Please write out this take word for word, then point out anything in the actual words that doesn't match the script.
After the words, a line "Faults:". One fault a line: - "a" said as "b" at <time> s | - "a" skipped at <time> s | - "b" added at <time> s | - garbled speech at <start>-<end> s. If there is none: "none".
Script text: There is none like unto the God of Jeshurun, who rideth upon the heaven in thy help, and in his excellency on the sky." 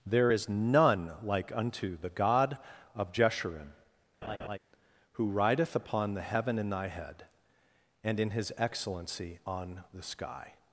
There is none like unto the God of Jeshurun, who rideth upon the heaven in thy head, and in his excellency on the sky."
Faults:
- "help" said as "head" at 6.9 s